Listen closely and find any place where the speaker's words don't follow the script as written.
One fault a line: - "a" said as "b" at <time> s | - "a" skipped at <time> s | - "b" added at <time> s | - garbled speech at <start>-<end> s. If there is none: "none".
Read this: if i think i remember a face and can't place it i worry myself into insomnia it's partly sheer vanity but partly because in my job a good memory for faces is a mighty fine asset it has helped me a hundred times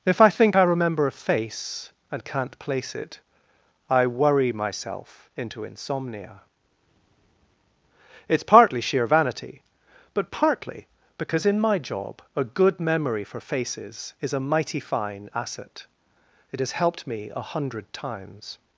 none